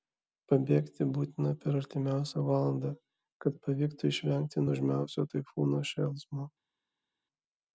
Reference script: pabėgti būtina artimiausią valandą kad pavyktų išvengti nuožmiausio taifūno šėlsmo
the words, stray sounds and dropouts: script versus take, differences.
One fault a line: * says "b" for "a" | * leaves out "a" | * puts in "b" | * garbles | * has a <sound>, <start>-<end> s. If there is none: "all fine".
* puts in "per"